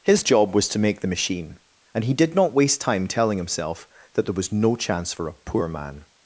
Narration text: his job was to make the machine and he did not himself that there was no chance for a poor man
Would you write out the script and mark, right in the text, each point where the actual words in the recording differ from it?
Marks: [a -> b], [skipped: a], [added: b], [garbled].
his job was to make the machine and he did not [added: waste time telling] himself that there was no chance for a poor man